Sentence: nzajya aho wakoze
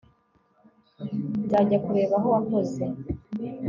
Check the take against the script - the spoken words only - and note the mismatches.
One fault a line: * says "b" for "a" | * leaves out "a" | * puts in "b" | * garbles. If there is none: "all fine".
* puts in "kureba"